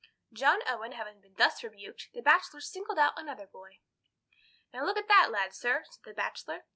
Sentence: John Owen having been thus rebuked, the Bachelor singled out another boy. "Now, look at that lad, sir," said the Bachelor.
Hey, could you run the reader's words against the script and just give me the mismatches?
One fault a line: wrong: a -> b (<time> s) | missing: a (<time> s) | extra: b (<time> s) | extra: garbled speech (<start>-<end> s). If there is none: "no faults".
no faults